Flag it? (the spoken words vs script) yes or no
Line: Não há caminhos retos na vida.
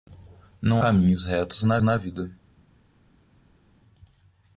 yes